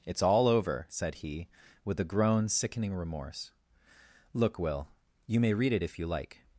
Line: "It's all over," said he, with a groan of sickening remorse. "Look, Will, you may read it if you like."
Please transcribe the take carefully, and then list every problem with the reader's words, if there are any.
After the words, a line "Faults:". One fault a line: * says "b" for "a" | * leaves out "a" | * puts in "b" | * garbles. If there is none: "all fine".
"It's all over," said he, with a groan sickening remorse. "Look, Will, you may read it if you like."
Faults:
* leaves out "of"